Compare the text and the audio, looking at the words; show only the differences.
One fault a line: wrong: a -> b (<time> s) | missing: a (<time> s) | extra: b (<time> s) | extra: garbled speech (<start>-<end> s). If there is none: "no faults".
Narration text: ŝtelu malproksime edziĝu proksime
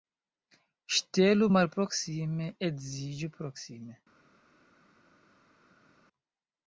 no faults